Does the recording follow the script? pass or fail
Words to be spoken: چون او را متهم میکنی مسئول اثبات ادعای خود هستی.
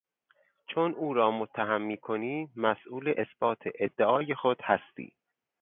pass